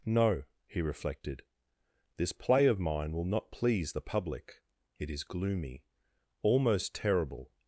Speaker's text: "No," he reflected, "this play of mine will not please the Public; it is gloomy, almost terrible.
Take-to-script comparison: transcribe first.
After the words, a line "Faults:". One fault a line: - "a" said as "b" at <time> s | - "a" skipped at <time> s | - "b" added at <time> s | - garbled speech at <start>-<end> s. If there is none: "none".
"No," he reflected, "this play of mine will not please the Public; it is gloomy, almost terrible.
Faults:
none